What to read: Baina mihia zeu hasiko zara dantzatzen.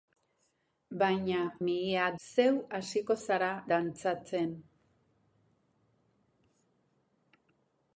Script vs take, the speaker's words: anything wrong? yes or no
no